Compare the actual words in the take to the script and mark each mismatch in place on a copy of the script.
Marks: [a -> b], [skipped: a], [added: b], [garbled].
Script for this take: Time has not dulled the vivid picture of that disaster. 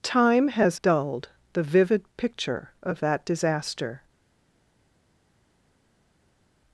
Time has [skipped: not] dulled the vivid picture of that disaster.